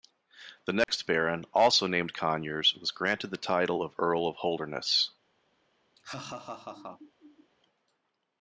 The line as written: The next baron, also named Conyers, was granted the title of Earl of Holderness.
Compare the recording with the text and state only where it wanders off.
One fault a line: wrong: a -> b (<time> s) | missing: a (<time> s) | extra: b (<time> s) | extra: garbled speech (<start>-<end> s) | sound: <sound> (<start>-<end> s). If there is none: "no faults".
sound: dropout (0.8-0.9 s)
sound: laugh (6.0-7.5 s)